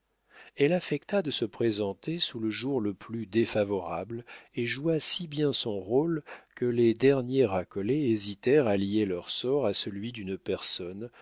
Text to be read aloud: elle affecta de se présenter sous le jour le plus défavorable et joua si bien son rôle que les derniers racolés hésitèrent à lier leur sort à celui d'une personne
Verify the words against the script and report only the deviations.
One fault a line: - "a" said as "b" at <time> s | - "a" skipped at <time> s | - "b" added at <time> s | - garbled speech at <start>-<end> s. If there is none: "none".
none